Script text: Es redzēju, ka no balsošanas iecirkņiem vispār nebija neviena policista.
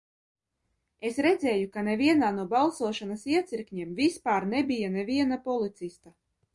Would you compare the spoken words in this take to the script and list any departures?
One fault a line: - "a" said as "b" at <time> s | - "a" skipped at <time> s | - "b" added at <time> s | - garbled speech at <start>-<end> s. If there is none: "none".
- "nevienā" added at 1.9 s